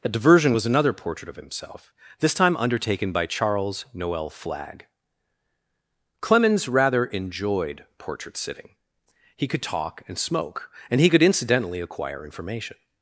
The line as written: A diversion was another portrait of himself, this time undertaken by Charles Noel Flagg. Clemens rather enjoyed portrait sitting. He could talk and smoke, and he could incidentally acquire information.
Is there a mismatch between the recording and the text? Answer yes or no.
no